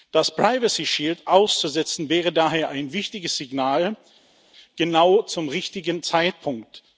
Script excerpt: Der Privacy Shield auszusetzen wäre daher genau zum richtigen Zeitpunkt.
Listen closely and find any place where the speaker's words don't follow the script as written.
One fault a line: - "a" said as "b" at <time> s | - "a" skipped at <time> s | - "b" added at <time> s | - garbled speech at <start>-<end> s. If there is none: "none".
- "Der" said as "Das" at 0.1 s
- "ein wichtiges Signal" added at 2.7 s